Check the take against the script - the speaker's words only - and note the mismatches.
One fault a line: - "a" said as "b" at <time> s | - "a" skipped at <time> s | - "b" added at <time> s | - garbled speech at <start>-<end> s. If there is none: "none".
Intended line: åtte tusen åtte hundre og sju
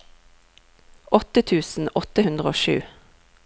none